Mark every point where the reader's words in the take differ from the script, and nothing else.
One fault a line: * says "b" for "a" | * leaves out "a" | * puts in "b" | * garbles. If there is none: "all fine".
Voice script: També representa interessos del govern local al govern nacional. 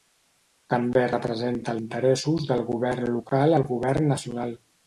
all fine